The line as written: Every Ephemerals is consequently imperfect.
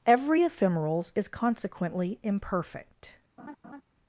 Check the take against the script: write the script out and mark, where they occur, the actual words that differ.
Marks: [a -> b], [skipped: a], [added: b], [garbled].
Every Ephemerals is consequently imperfect.